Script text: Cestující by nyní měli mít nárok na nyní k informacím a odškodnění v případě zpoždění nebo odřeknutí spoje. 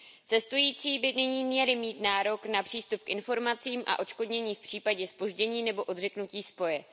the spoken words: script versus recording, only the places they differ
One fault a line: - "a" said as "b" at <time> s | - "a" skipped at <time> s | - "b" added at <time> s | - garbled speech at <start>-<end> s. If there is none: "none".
- "nyní" said as "přístup" at 2.6 s